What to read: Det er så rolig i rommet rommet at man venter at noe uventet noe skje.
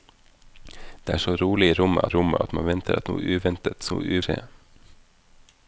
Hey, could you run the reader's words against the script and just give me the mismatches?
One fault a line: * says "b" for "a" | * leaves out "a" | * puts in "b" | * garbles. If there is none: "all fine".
all fine